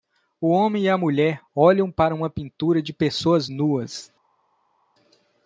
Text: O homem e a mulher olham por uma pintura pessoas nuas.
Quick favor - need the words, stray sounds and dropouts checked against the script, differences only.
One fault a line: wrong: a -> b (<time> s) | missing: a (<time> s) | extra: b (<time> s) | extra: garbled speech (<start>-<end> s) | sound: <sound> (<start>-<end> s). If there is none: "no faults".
wrong: por -> para (1.9 s)
extra: de (2.8 s)